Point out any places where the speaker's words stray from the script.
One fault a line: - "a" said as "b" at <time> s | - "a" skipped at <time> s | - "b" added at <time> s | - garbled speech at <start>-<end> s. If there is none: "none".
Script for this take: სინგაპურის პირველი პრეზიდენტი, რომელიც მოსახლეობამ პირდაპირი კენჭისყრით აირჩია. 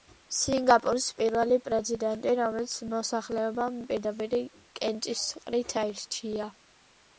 none